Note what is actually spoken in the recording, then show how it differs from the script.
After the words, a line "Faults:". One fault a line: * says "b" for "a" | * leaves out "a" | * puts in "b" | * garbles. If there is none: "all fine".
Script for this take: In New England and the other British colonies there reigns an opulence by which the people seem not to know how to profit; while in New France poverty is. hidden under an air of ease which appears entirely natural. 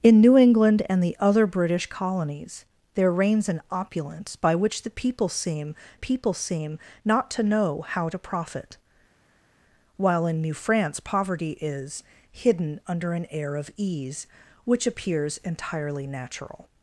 In New England and the other British colonies there reigns an opulence by which the people seem people seem not to know how to profit; while in New France poverty is. hidden under an air of ease which appears entirely natural.
Faults:
* puts in "people seem"